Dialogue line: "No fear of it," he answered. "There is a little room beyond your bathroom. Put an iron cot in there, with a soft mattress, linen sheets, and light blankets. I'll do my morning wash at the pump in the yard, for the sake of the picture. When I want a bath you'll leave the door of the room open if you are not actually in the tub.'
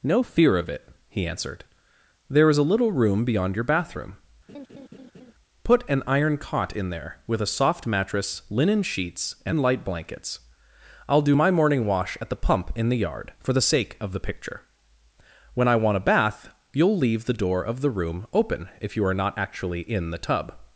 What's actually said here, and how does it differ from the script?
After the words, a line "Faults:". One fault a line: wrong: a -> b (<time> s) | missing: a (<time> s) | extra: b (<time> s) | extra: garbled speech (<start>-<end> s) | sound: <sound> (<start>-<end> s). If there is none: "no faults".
"No fear of it," he answered. "There is a little room beyond your bathroom. Put an iron cot in there, with a soft mattress, linen sheets, and light blankets. I'll do my morning wash at the pump in the yard, for the sake of the picture. When I want a bath you'll leave the door of the room open if you are not actually in the tub.'
Faults:
sound: laugh (4.5-5.3 s)